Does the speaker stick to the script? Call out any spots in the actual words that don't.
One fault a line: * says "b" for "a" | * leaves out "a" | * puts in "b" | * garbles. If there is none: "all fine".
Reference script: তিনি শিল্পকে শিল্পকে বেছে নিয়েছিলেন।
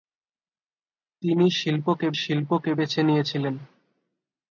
all fine